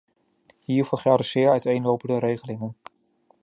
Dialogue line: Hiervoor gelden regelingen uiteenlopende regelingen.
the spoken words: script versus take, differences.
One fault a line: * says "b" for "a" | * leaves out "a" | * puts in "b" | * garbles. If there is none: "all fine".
* says "zeer" for "regelingen"